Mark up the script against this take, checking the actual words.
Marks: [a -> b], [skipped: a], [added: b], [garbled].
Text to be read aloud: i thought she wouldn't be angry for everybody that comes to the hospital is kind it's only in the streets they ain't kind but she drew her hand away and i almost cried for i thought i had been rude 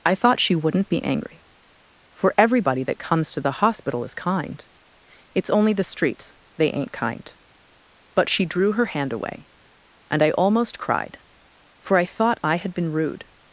i thought she wouldn't be angry for everybody that comes to the hospital is kind it's only [skipped: in] the streets they ain't kind but she drew her hand away and i almost cried for i thought i had been rude